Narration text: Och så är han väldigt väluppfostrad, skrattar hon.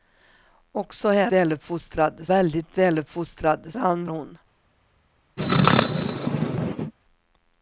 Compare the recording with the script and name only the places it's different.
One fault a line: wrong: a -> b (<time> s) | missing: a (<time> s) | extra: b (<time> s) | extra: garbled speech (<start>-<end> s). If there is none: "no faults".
wrong: han -> väluppfostrad (1.3 s)
wrong: skrattar -> han (3.8 s)